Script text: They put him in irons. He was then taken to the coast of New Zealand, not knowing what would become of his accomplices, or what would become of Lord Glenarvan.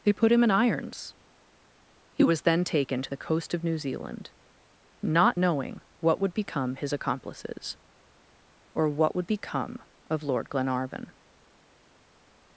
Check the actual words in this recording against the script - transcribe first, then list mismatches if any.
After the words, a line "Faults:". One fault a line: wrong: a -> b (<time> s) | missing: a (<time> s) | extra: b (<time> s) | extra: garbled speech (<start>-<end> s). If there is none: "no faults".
They put him in irons. He was then taken to the coast of New Zealand, not knowing what would become his accomplices, or what would become of Lord Glenarvan.
Faults:
missing: of (6.8 s)